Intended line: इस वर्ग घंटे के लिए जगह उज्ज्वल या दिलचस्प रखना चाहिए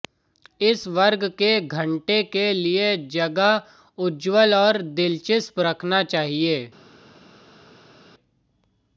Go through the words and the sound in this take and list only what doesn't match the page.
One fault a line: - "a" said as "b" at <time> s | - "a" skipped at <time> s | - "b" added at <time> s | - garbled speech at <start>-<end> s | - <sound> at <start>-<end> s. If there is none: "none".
- "के" added at 1.4 s
- "या" said as "और" at 4.6 s